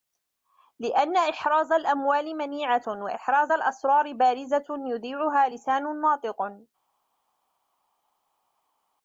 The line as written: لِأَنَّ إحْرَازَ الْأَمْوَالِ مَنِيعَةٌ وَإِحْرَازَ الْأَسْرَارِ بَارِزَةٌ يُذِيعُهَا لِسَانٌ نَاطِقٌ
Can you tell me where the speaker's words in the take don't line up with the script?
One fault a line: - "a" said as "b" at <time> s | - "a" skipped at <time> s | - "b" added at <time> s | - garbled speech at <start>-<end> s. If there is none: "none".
none